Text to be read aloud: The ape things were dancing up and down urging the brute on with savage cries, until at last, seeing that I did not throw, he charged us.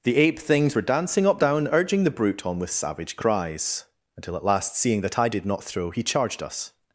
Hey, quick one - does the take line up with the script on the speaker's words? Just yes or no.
no